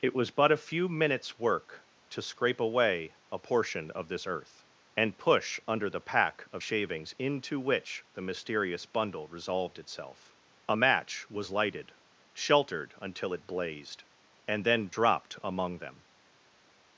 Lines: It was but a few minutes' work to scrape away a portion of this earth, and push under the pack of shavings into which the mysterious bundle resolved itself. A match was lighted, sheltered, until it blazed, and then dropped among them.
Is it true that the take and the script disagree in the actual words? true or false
false